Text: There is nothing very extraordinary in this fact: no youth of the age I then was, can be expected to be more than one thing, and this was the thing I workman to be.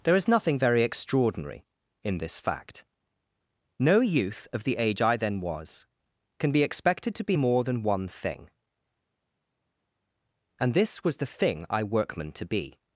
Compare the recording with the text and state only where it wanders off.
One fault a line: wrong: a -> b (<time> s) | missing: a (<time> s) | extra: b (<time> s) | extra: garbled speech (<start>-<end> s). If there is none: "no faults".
no faults